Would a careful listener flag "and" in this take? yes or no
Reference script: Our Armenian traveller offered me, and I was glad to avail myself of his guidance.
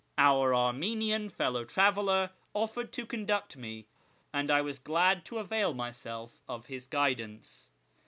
no